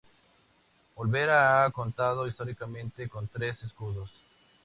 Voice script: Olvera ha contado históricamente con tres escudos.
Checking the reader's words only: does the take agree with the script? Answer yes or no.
yes